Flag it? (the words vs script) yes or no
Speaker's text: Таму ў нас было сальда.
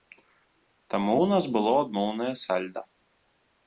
yes